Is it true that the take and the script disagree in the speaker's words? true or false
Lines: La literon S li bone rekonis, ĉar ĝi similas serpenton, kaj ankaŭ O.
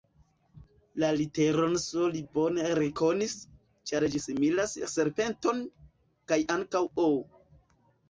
false